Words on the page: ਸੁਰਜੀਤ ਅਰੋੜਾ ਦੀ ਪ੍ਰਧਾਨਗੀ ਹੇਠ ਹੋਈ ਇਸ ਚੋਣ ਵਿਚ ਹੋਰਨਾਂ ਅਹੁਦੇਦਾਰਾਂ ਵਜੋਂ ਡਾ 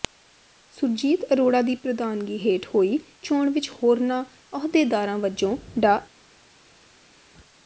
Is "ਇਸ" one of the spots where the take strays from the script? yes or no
yes